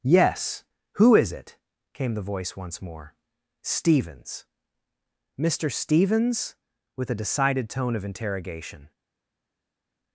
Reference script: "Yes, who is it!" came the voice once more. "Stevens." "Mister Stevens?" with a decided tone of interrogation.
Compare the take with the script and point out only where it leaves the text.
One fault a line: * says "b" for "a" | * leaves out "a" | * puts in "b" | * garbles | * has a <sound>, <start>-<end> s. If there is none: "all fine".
all fine